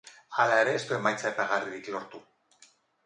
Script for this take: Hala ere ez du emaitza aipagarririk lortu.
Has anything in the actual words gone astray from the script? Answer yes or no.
no